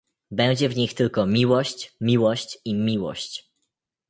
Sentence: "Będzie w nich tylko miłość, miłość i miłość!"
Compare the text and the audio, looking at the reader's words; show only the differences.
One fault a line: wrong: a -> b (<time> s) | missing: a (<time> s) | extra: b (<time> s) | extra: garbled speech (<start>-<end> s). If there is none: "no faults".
no faults